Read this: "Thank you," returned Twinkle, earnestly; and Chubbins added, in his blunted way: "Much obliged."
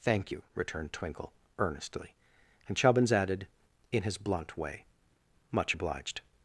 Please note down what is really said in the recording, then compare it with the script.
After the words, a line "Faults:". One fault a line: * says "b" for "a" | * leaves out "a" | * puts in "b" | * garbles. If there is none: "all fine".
"Thank you," returned Twinkle, earnestly; and Chubbins added, in his blunt way: "Much obliged."
Faults:
* says "blunt" for "blunted"